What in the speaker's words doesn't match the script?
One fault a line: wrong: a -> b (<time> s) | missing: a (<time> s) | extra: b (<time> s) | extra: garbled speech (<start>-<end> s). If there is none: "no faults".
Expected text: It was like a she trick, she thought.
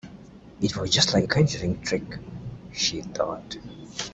extra: just (0.9 s)
wrong: she -> conjuring (1.2 s)